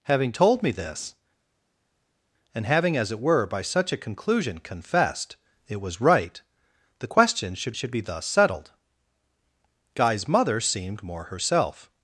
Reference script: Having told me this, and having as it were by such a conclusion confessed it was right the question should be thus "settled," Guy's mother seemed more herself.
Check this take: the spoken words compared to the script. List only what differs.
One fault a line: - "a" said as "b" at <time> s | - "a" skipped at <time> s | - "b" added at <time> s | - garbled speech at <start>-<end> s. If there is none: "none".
- "should" added at 7.7 s